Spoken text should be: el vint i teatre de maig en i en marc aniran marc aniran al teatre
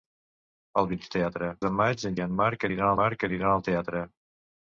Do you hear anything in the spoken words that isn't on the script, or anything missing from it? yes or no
no